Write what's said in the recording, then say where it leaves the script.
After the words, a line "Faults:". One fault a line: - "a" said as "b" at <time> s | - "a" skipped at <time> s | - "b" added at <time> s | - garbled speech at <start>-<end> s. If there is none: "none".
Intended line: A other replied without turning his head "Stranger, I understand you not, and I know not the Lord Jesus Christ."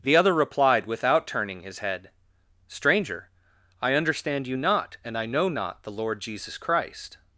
The other replied without turning his head "Stranger, I understand you not, and I know not the Lord Jesus Christ."
Faults:
- "A" said as "The" at 0.0 s